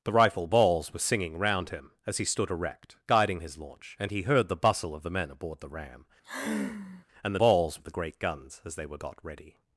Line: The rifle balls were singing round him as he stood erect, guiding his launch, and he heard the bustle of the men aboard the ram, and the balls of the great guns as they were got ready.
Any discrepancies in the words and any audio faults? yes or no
yes